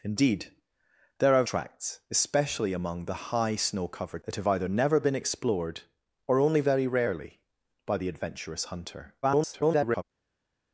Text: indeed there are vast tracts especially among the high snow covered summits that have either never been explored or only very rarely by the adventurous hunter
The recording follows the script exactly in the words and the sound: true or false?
false